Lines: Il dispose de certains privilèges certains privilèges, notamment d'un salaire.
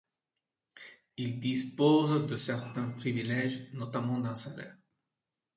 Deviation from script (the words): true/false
true